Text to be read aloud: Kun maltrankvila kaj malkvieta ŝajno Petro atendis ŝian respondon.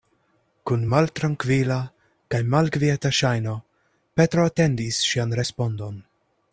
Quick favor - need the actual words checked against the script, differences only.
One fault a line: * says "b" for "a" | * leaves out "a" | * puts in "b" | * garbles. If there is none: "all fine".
all fine